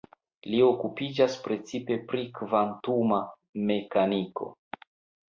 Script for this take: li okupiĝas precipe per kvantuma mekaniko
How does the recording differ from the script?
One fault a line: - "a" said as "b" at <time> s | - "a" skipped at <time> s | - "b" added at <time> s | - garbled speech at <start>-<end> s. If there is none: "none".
- "per" said as "pri" at 2.1 s